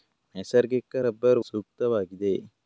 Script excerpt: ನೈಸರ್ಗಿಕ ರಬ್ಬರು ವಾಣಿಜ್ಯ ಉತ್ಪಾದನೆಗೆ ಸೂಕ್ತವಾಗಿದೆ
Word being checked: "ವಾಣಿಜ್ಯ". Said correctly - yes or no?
no